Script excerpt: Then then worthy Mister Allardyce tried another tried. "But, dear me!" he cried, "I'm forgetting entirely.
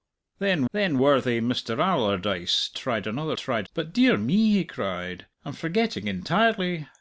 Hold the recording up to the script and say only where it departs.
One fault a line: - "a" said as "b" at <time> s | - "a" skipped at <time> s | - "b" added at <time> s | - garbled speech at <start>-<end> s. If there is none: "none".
none